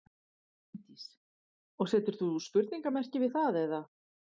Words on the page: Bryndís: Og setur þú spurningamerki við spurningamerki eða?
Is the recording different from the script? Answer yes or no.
yes